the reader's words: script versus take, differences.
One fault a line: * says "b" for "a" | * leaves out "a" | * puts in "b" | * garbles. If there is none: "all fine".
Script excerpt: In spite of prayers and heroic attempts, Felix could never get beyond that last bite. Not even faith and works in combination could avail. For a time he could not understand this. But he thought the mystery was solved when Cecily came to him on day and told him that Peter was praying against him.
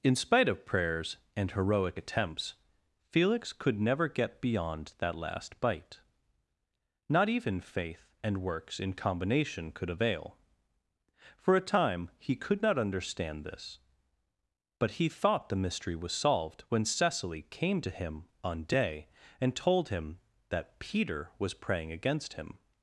all fine